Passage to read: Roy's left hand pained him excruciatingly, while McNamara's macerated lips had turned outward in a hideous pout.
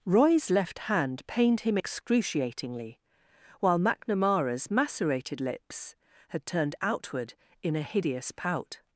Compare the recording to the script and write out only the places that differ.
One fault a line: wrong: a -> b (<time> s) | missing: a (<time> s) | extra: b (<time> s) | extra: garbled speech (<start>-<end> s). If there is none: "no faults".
no faults